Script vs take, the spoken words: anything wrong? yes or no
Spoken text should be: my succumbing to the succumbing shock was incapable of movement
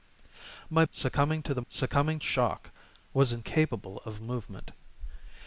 no